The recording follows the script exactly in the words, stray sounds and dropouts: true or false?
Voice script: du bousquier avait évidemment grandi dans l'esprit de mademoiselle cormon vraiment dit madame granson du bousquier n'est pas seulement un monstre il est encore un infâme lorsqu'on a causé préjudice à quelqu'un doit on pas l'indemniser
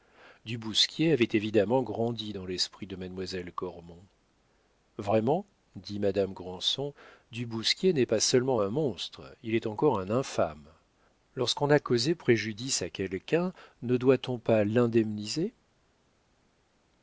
false